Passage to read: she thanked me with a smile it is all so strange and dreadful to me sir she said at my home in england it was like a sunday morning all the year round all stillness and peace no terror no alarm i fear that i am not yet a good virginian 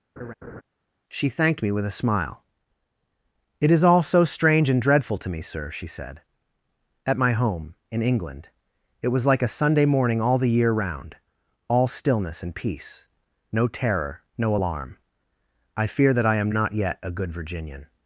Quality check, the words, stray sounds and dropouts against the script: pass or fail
fail